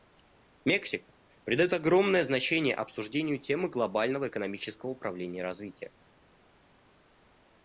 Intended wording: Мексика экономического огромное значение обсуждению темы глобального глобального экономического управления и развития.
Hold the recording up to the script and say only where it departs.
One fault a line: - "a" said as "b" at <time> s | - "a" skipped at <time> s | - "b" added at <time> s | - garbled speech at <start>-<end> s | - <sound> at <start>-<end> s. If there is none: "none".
- "экономического" said as "придает" at 1.4 s
- "глобального" skipped at 4.3 s